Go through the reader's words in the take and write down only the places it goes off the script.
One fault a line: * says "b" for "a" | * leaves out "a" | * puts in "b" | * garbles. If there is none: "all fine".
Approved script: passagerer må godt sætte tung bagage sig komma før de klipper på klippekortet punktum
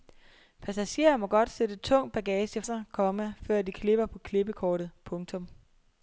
all fine